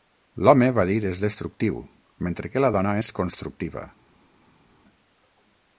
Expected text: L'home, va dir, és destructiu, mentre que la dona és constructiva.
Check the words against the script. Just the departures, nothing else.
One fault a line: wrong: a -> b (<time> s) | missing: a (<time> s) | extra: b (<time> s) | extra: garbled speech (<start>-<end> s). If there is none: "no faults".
no faults